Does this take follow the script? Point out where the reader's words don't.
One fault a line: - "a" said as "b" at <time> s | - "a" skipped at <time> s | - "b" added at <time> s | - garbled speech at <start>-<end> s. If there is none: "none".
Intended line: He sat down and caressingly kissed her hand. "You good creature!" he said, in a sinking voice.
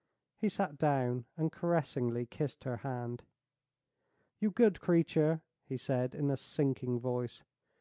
none